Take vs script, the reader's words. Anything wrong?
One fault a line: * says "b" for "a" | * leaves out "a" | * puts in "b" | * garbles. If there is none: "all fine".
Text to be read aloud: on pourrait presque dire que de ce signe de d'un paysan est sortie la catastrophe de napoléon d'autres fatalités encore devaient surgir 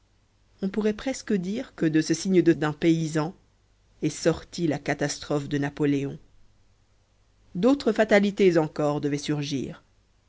all fine